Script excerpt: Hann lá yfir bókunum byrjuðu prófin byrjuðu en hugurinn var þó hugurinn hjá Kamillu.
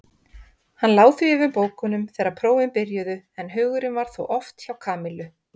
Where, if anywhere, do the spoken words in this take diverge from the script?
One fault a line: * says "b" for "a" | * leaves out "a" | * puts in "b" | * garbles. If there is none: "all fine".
* puts in "því"
* says "þegar" for "byrjuðu"
* says "oft" for "hugurinn"